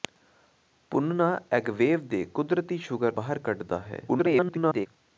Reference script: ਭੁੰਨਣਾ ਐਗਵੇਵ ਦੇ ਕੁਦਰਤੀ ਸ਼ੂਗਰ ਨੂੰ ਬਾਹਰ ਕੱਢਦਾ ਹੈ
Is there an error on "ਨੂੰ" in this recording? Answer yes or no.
yes